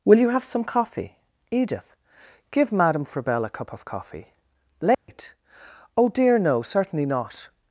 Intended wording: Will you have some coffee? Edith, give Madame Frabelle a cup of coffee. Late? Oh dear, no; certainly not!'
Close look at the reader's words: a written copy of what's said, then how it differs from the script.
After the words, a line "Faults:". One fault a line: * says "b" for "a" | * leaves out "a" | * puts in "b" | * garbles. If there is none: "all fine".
Will you have some coffee? Edith, give Madame Frabelle a cup of coffee. Late? Oh dear, no; certainly not!'
Faults:
all fine